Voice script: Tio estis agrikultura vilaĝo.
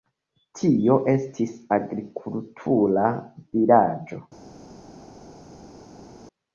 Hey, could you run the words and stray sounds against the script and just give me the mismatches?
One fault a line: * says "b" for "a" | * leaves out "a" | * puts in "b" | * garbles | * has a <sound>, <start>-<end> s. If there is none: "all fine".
all fine